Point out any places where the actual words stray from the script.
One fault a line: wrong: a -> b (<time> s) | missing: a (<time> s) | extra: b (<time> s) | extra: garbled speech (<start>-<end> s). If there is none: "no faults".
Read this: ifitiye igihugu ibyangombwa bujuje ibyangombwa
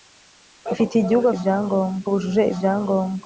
no faults